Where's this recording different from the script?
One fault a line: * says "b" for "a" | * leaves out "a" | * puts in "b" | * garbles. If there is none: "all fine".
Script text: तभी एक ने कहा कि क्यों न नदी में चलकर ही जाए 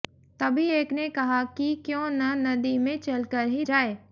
all fine